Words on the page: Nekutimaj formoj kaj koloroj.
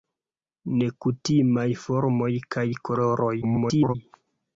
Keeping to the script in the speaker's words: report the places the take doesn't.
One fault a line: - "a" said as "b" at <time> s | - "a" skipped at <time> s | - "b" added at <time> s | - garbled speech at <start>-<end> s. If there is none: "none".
- garbled speech at 3.4-3.9 s